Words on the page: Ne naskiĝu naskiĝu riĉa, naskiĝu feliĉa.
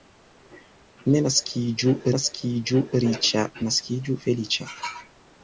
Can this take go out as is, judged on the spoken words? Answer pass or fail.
pass